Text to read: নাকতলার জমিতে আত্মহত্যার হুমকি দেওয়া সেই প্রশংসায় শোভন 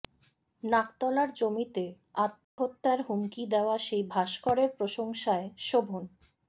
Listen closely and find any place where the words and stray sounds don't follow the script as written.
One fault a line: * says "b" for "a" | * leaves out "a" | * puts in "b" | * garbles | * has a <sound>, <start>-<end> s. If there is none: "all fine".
* has a dropout, 2.4-2.6 s
* puts in "ভাস্করের"